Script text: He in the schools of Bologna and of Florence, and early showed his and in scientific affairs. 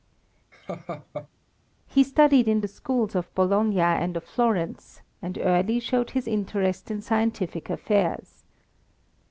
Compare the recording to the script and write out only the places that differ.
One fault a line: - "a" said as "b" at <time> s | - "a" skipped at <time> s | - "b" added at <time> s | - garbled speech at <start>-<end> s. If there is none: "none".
- "studied" added at 2.0 s
- "and" said as "interest" at 6.3 s